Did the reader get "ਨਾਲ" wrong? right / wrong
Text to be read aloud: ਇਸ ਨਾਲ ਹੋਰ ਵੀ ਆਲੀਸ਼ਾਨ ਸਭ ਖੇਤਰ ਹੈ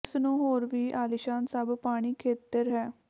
wrong